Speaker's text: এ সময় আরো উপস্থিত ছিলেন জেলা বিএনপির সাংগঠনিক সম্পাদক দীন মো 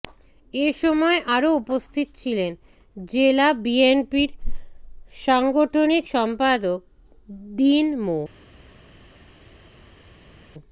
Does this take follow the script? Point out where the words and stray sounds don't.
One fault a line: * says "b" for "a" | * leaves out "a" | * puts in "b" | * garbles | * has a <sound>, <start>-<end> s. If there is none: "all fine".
all fine